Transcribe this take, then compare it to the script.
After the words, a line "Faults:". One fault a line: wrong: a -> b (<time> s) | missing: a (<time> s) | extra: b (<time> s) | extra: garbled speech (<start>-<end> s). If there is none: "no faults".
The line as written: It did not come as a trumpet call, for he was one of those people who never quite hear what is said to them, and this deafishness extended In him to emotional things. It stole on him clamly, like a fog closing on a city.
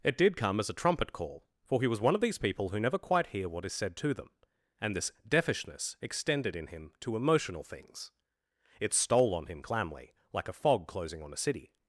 It did come as a trumpet call, for he was one of these people who never quite hear what is said to them, and this deafishness extended In him to emotional things. It stole on him clamly, like a fog closing on a city.
Faults:
missing: not (0.3 s)
wrong: those -> these (2.2 s)